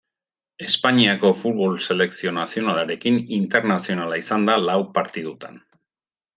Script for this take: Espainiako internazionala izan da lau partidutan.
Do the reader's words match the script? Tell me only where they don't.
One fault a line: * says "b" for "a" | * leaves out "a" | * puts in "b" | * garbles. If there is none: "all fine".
* puts in "futbol selekzio nazionalarekin"